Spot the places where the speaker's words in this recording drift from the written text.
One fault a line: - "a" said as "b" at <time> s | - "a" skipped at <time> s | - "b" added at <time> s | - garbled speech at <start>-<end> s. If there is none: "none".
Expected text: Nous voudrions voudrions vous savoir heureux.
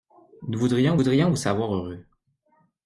none